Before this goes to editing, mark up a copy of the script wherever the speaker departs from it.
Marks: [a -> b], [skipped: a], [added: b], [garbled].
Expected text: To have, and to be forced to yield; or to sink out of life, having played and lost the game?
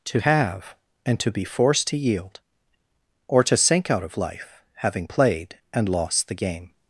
To have, and to be forced to yield; or to sink out of life, having played and lost the game?